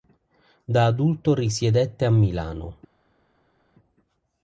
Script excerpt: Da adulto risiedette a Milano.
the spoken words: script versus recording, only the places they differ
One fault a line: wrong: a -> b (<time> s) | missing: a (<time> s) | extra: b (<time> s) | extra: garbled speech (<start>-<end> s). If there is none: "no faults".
no faults